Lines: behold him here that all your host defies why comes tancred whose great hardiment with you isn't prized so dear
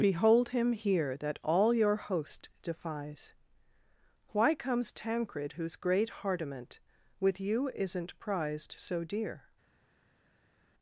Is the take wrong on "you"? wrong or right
right